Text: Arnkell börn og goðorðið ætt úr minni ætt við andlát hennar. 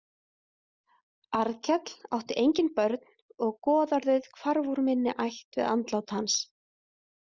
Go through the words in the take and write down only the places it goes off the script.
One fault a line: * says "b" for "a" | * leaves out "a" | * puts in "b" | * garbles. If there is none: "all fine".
* puts in "átti engin"
* says "hvarf" for "ætt"
* says "hans" for "hennar"